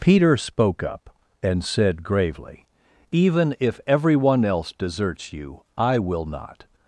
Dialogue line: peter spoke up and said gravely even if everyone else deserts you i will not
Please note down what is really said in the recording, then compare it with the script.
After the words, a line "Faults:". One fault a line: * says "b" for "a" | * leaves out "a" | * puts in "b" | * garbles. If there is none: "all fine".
peter spoke up and said gravely even if everyone else deserts you i will not
Faults:
all fine